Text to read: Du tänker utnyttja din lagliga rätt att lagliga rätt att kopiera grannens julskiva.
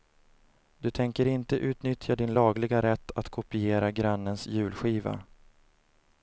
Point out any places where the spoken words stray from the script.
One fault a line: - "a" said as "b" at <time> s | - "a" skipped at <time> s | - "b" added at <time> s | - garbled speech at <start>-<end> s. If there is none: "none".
- "inte" added at 1.2 s
- "lagliga rätt att" skipped at 3.3 s